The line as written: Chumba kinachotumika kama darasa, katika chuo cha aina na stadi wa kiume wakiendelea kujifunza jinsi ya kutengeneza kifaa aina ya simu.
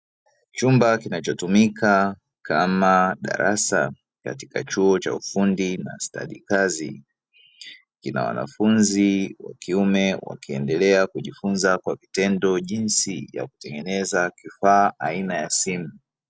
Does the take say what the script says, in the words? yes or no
no